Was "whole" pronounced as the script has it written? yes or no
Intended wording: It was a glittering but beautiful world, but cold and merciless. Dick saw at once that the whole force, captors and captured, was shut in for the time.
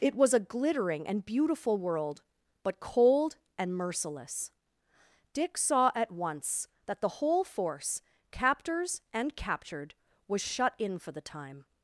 yes